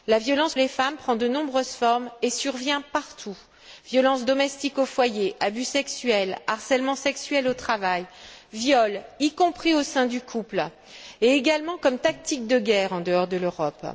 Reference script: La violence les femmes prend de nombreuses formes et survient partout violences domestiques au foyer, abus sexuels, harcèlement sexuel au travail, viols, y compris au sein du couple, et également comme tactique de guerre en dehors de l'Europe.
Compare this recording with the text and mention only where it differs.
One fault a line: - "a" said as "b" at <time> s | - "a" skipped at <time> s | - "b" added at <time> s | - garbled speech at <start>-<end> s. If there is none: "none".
none